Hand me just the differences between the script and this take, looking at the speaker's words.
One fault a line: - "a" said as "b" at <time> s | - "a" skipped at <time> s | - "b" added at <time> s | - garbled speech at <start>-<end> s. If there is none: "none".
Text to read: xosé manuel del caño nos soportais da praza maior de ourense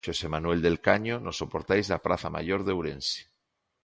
none